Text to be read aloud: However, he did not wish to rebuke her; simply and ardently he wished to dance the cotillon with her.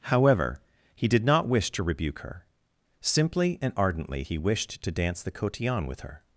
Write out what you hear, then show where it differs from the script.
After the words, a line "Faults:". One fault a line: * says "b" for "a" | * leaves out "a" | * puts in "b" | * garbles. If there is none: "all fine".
However, he did not wish to rebuke her; simply and ardently he wished to dance the cotillon with her.
Faults:
all fine